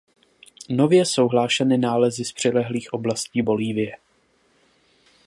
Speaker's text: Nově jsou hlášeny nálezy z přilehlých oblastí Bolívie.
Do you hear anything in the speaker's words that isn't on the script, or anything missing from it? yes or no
no